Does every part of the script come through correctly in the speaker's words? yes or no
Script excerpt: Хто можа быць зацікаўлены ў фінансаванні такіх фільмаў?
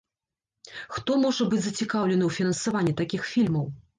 yes